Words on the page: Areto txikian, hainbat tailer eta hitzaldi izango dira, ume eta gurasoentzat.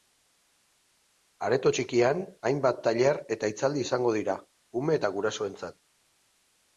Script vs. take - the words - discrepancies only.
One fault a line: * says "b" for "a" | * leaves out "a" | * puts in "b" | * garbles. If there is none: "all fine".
all fine